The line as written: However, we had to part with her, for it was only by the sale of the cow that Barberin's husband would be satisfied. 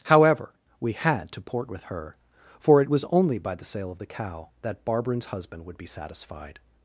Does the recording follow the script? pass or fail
fail